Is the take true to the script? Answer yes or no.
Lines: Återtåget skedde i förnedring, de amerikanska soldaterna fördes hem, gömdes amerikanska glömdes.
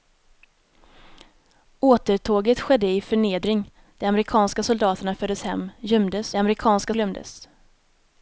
yes